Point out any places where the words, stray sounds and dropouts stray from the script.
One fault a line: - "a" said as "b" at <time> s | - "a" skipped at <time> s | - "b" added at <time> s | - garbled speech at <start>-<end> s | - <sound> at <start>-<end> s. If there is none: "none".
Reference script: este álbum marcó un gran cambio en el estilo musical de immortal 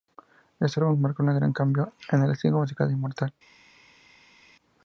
none